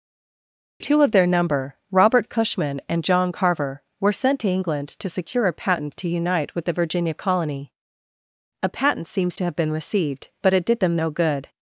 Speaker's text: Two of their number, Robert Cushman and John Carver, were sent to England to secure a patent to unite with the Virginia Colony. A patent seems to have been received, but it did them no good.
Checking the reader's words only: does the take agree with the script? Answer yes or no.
yes